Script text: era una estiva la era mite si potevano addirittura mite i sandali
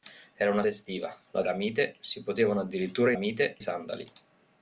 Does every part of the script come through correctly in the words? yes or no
yes